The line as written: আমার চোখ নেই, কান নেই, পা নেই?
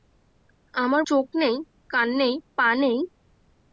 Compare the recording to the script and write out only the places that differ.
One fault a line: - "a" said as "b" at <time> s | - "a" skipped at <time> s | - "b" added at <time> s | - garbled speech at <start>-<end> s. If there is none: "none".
none